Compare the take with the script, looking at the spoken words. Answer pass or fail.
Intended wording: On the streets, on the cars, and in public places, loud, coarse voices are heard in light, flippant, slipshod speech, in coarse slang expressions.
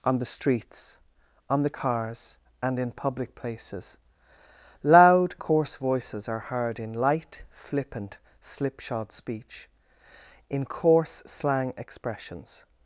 pass